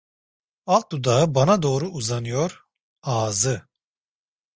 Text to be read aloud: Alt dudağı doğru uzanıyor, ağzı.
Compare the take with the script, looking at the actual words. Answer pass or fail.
fail